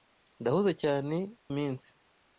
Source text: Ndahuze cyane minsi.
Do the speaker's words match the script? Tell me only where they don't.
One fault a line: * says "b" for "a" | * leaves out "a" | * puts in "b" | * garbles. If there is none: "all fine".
all fine